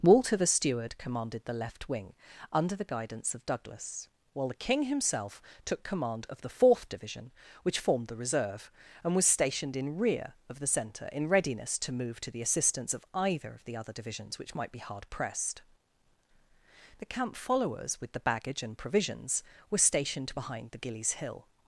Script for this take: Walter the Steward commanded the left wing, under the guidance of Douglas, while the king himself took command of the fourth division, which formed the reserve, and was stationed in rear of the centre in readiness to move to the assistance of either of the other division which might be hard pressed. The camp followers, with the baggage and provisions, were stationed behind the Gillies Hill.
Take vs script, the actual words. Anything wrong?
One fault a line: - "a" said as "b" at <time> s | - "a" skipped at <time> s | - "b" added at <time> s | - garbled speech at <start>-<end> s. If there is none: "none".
- "division" said as "divisions" at 13.9 s